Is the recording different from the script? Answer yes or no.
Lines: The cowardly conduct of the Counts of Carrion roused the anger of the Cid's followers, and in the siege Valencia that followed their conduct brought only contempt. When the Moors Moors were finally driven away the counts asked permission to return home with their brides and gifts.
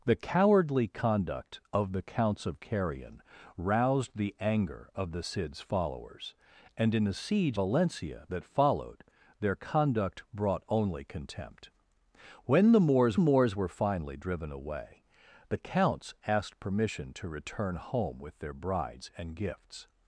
no